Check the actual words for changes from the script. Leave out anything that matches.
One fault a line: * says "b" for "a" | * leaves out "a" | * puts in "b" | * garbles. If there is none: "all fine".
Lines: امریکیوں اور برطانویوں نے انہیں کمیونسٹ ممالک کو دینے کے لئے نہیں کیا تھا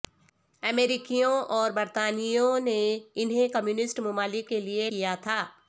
* leaves out "کو دینے"
* leaves out "نہیں"